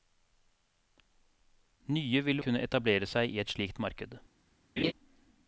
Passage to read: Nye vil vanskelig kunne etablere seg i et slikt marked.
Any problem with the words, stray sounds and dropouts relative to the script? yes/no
yes